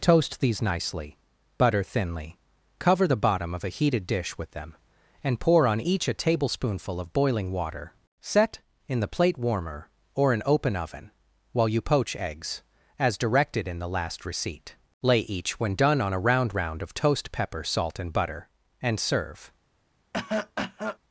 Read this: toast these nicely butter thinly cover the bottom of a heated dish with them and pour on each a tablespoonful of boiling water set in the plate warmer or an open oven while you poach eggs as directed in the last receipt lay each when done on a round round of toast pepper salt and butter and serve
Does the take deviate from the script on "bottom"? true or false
false